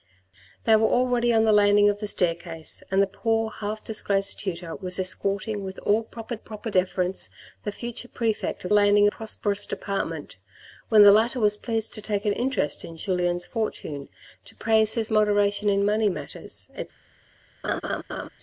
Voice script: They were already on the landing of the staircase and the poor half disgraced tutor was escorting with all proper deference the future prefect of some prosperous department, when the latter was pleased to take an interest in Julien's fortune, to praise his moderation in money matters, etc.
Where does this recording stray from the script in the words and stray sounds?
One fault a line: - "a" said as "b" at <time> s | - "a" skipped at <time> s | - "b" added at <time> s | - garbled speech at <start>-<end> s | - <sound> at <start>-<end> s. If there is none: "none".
- "proper" added at 6.3 s
- "some" said as "landing" at 8.7 s
- laugh at 17.6-18.3 s